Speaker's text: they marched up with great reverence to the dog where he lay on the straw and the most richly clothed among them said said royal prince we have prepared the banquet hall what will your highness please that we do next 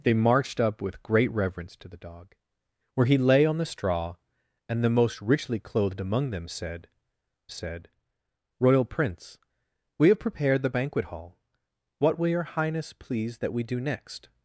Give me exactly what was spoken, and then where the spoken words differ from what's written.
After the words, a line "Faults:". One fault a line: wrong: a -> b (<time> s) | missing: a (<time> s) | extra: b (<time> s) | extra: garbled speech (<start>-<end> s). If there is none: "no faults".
they marched up with great reverence to the dog where he lay on the straw and the most richly clothed among them said said royal prince we have prepared the banquet hall what will your highness please that we do next
Faults:
no faults